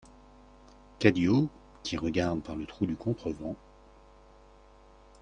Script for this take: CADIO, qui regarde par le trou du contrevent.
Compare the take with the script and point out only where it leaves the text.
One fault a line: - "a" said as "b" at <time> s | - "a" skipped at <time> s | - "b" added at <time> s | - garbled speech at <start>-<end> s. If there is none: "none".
none